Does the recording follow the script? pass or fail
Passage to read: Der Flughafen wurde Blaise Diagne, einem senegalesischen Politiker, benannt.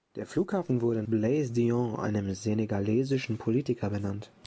pass